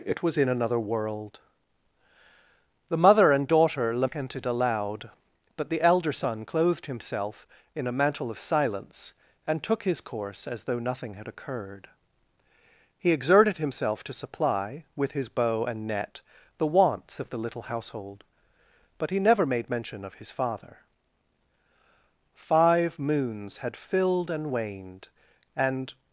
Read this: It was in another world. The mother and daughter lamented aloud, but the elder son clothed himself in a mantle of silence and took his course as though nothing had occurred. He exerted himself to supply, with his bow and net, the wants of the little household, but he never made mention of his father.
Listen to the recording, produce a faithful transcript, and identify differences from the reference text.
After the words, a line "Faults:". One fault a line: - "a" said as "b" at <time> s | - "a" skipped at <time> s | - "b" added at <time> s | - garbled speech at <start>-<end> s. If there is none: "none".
It was in another world. The mother and daughter lamented aloud, but the elder son clothed himself in a mantle of silence and took his course as though nothing had occurred. He exerted himself to supply, with his bow and net, the wants of the little household, but he never made mention of his father. Five moons had filled and waned, and
Faults:
- "Five moons had filled and waned and" added at 22.3 s